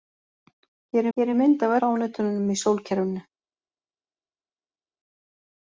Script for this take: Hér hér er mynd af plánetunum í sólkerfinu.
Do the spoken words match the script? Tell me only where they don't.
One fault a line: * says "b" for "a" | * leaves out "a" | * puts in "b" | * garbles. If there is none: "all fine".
all fine